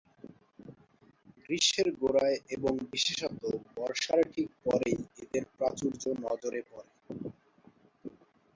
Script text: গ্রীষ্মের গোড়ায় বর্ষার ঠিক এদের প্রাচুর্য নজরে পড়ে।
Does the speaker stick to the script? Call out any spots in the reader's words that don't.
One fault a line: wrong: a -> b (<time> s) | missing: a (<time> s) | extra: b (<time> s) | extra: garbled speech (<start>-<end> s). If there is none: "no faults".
extra: এবং বিশেষত (2.5 s)
extra: পরেই (4.6 s)